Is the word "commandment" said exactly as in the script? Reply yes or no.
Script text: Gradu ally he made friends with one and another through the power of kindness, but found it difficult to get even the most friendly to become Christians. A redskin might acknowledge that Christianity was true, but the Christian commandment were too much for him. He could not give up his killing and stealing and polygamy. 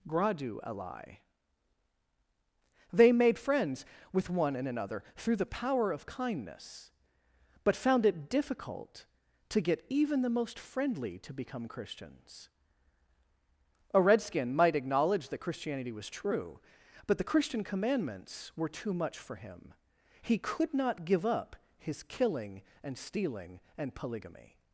no